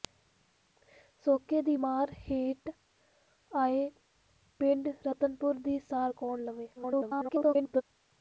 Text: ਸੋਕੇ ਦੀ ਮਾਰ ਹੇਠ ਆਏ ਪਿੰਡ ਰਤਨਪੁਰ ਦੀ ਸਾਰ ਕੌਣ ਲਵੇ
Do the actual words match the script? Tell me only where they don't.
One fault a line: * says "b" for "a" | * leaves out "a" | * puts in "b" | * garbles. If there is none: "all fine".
* garbles